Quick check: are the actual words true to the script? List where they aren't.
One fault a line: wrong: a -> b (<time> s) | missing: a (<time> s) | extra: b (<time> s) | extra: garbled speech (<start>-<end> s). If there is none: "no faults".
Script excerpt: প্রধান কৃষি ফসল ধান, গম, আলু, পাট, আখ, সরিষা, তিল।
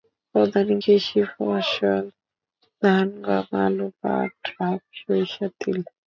no faults